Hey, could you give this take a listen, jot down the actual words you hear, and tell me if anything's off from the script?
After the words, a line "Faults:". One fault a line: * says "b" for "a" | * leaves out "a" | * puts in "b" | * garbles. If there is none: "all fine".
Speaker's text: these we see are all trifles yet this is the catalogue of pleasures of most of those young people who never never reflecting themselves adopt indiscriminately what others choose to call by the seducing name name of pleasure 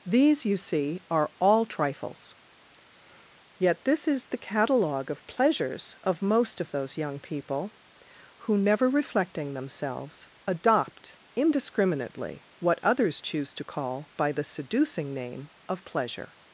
these you see are all trifles yet this is the catalogue of pleasures of most of those young people who never reflecting themselves adopt indiscriminately what others choose to call by the seducing name of pleasure
Faults:
* says "you" for "we"
* leaves out "never"
* leaves out "name"